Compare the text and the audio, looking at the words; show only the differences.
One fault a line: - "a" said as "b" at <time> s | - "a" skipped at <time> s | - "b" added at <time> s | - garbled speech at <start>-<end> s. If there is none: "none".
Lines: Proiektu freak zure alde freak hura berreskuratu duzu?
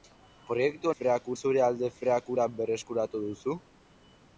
none